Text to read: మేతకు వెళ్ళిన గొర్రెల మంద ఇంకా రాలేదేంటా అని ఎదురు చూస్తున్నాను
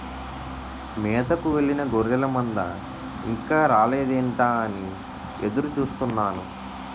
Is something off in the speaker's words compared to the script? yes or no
no